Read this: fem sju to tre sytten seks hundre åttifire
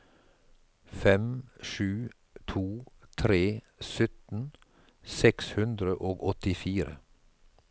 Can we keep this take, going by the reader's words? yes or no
no